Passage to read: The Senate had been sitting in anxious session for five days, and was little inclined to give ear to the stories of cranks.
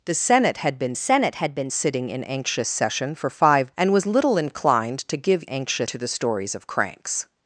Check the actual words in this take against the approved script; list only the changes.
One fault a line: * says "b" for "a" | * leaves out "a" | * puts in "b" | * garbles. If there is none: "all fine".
* puts in "Senate had been"
* leaves out "days"
* says "anxious" for "ear"